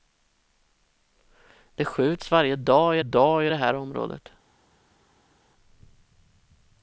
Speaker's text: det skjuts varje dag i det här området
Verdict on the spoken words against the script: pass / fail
fail